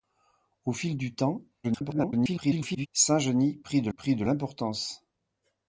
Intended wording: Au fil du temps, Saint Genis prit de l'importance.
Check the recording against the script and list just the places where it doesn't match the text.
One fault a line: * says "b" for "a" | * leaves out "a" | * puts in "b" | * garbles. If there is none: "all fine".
* garbles
* puts in "prit de"